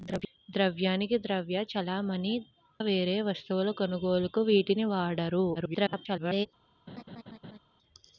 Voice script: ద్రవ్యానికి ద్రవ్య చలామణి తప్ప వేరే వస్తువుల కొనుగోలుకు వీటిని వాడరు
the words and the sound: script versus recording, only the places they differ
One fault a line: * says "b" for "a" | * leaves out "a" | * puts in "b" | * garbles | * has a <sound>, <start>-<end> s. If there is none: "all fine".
* leaves out "తప్ప"
* garbles
* has a laugh, 6.9-7.6 s